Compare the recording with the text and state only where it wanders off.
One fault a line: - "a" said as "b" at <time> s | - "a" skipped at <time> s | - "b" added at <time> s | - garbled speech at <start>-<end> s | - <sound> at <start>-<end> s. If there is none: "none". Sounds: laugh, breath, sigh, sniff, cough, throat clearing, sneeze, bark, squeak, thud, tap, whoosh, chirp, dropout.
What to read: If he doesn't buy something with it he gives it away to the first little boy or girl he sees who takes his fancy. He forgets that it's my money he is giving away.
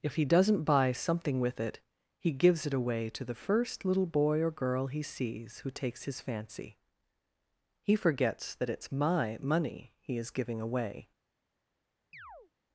- chirp at 12.1-12.5 s